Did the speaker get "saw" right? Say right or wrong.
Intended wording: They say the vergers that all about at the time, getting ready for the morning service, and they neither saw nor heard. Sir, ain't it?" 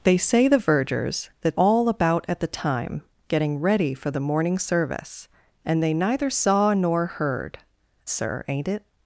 right